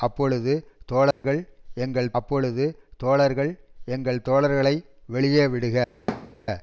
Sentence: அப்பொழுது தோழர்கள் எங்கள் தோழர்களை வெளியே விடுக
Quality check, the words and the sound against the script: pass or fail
fail